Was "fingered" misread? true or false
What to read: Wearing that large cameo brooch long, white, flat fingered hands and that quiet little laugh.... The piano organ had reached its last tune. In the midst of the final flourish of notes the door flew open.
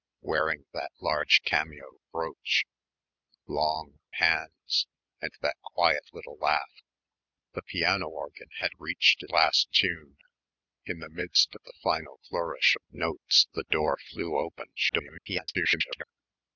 true